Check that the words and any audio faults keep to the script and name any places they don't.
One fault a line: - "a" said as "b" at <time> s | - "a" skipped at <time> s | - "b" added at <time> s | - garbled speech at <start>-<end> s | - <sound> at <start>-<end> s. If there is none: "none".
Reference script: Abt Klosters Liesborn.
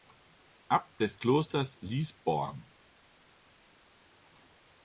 - "des" added at 1.0 s